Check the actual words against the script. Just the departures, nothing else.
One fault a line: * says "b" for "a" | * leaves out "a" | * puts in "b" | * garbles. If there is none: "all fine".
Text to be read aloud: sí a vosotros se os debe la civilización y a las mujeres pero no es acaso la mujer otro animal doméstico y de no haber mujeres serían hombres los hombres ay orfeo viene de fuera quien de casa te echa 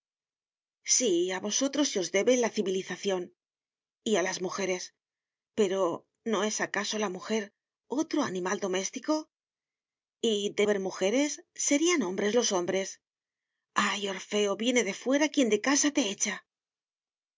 * leaves out "no"